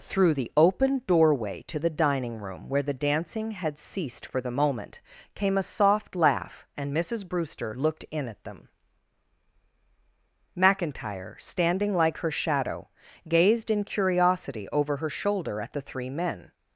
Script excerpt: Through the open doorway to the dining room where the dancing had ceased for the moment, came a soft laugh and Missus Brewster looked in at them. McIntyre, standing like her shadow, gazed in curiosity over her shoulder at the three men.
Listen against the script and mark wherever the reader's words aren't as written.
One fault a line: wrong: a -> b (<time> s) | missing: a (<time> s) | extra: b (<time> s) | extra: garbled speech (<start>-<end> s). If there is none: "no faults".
no faults